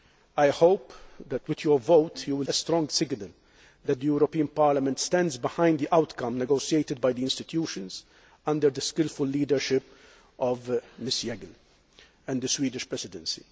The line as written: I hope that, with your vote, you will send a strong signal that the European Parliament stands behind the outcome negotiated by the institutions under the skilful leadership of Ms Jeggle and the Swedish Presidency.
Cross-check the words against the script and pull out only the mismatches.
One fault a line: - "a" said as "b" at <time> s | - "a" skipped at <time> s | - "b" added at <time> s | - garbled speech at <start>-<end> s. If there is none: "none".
- "send" skipped at 2.5 s